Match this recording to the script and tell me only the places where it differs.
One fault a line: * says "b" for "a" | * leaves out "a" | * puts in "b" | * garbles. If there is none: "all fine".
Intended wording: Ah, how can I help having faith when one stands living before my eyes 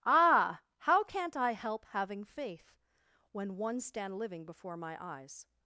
* says "can't" for "can"
* says "stand" for "stands"